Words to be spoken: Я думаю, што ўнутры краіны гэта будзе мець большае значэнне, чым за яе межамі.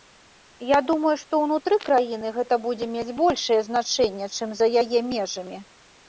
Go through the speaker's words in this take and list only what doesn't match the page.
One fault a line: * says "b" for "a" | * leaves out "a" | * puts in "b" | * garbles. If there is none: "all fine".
all fine